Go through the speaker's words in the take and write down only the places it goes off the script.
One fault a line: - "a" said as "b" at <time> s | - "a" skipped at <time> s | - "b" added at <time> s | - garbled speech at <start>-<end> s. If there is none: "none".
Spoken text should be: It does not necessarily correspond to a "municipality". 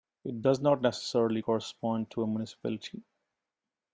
none